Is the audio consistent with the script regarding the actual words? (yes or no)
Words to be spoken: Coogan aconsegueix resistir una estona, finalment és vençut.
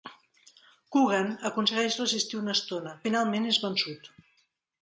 yes